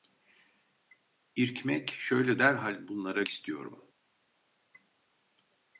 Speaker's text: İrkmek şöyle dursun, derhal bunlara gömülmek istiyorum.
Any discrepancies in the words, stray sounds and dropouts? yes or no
yes